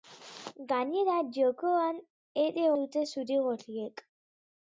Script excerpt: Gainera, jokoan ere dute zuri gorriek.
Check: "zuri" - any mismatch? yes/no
no